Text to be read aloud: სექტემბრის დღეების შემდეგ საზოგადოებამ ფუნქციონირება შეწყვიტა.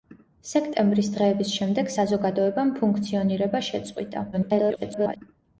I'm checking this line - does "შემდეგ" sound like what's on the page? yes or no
yes